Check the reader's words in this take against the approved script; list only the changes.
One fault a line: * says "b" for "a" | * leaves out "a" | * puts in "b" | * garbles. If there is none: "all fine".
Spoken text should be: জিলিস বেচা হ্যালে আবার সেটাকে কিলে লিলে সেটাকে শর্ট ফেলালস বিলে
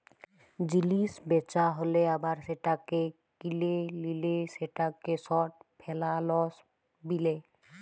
all fine